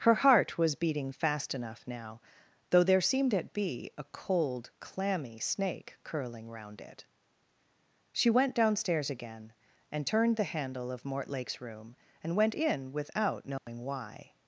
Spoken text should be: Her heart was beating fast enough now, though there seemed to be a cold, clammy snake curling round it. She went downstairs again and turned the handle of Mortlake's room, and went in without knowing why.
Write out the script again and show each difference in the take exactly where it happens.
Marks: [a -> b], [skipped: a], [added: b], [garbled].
Her heart was beating fast enough now, though there seemed [to -> at] be a cold, clammy snake curling round it. She went downstairs again and turned the handle of Mortlake's room, and went in without knowing why.